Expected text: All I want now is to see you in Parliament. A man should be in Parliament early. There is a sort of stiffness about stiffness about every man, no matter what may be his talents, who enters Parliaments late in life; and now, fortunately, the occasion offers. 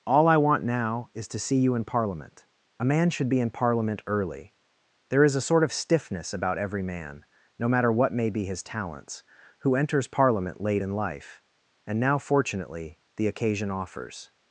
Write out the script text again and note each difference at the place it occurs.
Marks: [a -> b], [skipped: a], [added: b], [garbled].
All I want now is to see you in Parliament. A man should be in Parliament early. There is a sort of stiffness about [skipped: stiffness about] every man, no matter what may be his talents, who enters [Parliaments -> Parliament] late in life; and now, fortunately, the occasion offers.